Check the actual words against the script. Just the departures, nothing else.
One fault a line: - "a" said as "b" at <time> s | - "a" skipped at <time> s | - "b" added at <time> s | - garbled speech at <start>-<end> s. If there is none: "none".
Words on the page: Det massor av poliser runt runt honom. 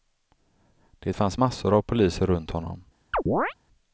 - "fanns" added at 1.1 s
- "runt" skipped at 2.5 s